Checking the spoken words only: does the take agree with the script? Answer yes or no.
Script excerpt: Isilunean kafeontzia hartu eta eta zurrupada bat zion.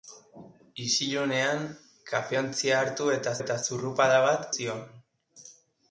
yes